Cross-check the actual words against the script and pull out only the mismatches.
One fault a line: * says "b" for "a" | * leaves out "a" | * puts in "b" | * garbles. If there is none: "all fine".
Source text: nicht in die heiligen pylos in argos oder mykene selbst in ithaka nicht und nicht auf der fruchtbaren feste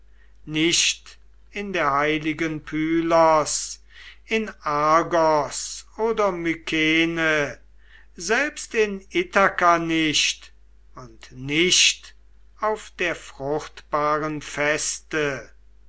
* says "der" for "die"